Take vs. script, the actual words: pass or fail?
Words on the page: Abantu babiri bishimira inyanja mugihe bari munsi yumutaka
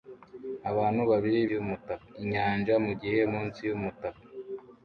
fail